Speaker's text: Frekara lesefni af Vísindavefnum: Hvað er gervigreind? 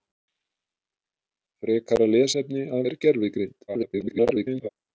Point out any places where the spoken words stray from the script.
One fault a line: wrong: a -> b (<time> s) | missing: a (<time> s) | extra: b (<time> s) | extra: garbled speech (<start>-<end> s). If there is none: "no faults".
missing: Vísindavefnum Hvað (2.8 s)
extra: garbled speech (3.7-4.7 s)